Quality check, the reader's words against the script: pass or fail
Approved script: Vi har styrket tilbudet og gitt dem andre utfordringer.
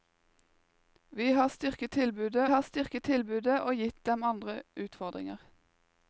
fail